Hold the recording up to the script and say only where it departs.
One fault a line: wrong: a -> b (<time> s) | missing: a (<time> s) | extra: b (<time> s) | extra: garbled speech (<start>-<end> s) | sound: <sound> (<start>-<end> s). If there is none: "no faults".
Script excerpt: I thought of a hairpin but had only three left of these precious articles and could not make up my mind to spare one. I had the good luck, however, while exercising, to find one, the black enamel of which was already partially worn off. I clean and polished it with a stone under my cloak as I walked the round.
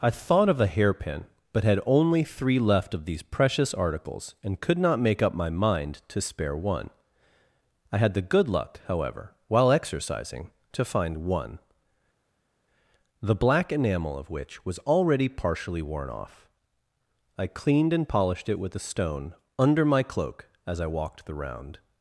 wrong: clean -> cleaned (17.5 s)